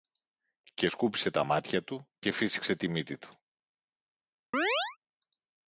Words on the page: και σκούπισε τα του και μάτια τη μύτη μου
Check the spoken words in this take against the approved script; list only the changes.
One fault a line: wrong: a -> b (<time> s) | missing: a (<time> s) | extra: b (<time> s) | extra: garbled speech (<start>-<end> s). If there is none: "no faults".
extra: μάτια (1.4 s)
wrong: μάτια -> φύσηξε (2.3 s)
wrong: μου -> του (3.2 s)